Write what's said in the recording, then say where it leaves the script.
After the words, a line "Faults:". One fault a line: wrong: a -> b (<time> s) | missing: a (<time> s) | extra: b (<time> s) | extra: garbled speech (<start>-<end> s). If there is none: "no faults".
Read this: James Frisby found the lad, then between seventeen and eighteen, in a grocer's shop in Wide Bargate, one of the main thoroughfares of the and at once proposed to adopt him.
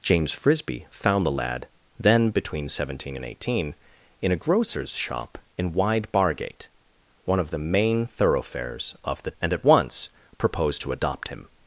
James Frisby found the lad, then between seventeen and eighteen, in a grocer's shop in Wide Bargate, one of the main thoroughfares of the and at once proposed to adopt him.
Faults:
no faults